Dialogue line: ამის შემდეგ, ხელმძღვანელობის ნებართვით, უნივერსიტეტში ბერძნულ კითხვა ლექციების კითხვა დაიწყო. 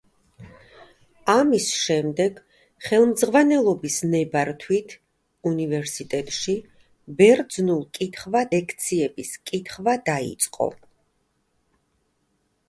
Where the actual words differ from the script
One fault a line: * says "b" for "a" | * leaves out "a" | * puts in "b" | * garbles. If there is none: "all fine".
all fine